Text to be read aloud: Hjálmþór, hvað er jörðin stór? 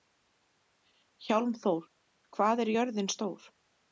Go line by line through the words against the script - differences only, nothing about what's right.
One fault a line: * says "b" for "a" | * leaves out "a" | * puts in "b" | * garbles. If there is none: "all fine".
all fine